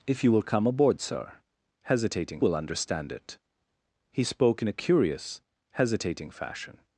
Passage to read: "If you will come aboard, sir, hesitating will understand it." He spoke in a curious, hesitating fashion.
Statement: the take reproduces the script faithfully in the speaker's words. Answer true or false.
true